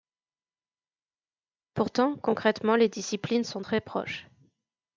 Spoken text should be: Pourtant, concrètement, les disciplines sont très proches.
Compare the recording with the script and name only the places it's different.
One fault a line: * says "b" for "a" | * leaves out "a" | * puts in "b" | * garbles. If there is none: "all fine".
all fine